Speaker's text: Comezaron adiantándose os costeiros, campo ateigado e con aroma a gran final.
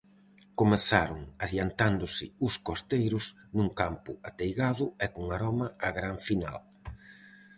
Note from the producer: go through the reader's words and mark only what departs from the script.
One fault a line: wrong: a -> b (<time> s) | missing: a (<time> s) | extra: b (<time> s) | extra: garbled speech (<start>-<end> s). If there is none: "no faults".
extra: nun (3.6 s)